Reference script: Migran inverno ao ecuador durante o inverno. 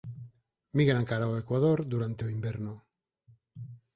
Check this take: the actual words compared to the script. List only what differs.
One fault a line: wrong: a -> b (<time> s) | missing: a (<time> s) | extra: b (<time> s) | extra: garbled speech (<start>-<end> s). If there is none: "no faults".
wrong: inverno -> cara (1.1 s)